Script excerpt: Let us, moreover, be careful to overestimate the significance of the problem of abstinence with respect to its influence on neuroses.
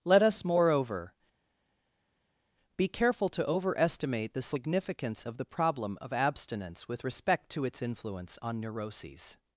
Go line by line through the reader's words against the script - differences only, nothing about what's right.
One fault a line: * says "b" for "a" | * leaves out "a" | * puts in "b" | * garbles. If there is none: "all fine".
all fine